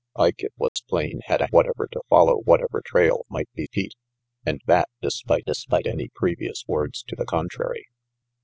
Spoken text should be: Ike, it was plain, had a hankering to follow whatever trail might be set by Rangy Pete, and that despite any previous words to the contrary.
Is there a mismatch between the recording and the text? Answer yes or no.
yes